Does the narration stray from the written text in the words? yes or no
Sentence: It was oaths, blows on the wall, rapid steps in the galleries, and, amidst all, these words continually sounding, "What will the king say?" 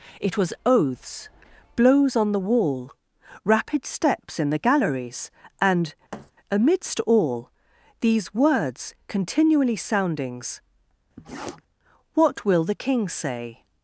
yes